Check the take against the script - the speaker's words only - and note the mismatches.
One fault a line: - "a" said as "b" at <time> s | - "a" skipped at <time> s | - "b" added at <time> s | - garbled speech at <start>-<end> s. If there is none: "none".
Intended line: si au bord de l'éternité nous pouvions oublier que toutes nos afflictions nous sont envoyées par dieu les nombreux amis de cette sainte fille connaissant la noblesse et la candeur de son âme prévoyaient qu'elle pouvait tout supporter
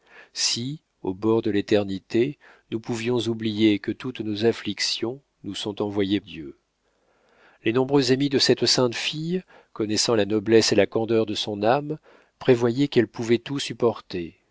- "par" skipped at 6.2 s